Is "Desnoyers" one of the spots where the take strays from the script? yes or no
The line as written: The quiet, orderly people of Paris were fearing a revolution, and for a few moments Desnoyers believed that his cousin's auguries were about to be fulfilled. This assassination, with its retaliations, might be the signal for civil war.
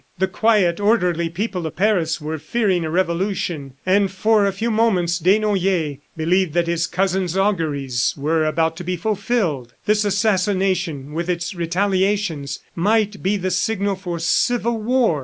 no